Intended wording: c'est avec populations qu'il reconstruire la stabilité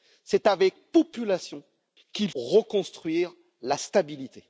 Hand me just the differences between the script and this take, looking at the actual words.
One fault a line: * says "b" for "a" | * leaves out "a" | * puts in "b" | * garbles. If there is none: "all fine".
all fine